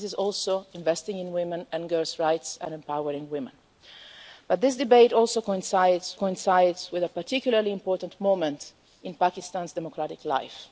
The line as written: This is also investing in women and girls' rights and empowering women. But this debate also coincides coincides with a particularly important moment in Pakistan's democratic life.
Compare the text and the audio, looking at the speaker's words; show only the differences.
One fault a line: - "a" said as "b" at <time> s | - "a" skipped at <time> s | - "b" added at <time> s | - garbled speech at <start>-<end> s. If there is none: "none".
none